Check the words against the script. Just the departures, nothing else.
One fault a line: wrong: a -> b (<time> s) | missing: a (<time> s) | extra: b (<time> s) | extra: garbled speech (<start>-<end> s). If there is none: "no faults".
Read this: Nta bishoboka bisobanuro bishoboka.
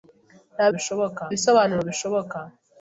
no faults